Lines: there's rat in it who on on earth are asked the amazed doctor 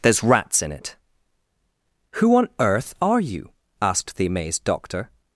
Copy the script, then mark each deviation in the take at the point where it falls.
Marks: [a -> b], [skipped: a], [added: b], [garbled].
there's [rat -> rats] in it who on [skipped: on] earth are [added: you] asked the amazed doctor